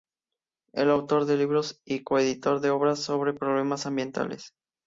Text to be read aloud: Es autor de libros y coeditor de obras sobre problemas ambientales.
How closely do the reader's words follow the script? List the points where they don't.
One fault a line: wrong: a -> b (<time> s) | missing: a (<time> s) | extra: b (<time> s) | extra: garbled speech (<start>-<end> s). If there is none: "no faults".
no faults